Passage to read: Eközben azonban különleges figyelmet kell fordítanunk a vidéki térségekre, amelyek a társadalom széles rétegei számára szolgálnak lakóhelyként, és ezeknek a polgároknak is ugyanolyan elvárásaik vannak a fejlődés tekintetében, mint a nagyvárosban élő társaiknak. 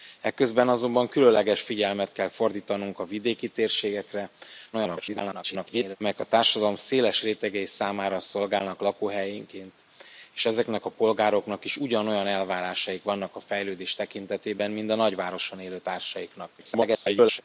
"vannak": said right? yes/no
yes